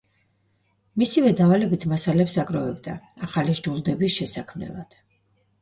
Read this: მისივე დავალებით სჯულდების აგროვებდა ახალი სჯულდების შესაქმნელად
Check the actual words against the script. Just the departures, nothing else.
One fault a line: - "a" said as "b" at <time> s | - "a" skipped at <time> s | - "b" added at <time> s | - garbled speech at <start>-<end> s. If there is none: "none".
- "სჯულდების" said as "მასალებს" at 1.9 s